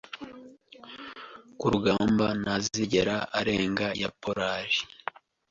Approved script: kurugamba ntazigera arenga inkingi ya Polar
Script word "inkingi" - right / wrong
wrong